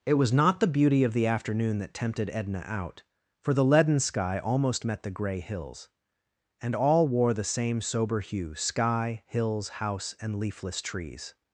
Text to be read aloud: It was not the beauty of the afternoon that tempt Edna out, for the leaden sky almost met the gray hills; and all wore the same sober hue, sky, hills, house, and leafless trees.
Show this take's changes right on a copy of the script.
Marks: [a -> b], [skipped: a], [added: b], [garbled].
It was not the beauty of the afternoon that [tempt -> tempted] Edna out, for the leaden sky almost met the gray hills; and all wore the same sober hue, sky, hills, house, and leafless trees.